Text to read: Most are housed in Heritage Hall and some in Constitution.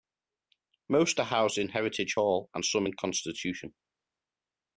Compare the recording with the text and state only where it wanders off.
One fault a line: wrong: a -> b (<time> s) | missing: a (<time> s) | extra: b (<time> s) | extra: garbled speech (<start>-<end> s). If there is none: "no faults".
no faults